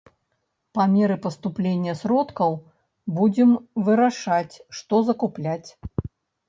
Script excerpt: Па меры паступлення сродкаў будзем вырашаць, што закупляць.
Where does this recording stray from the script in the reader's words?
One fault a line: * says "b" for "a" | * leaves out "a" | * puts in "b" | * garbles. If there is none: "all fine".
all fine